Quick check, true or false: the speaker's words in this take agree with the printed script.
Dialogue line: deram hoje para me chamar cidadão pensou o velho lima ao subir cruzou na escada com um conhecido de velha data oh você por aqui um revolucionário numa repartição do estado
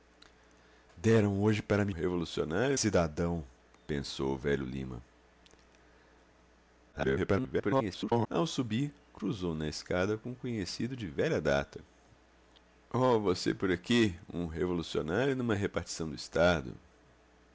false